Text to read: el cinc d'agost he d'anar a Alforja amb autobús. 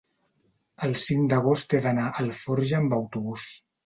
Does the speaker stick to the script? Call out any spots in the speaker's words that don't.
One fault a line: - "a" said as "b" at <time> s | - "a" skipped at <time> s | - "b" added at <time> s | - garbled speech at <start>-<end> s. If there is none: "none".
none